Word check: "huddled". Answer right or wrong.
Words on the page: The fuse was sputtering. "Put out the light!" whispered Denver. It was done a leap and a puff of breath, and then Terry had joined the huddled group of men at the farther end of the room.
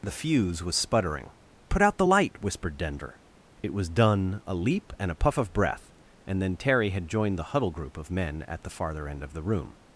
wrong